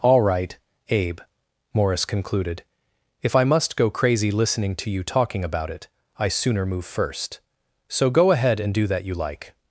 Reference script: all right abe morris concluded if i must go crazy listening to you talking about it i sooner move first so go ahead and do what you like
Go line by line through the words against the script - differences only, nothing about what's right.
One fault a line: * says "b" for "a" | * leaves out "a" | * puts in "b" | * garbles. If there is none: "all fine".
* says "that" for "what"